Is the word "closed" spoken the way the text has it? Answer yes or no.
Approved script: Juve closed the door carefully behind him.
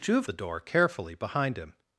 no